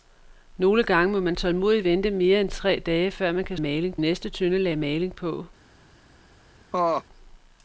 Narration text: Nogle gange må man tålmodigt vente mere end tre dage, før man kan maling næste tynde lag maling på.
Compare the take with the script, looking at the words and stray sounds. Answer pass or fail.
fail